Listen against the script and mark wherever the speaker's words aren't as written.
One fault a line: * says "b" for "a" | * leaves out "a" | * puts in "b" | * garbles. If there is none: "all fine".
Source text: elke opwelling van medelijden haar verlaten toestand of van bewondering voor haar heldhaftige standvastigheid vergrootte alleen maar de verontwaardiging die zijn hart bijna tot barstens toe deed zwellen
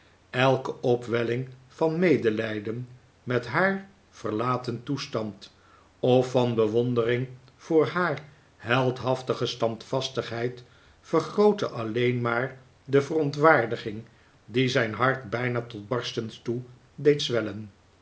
* puts in "met"